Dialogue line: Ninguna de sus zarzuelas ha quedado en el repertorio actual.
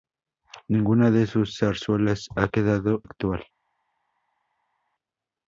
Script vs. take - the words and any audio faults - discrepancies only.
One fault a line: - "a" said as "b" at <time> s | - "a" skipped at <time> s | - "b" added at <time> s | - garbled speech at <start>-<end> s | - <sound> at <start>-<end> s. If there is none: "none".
- "en el repertorio" skipped at 3.0 s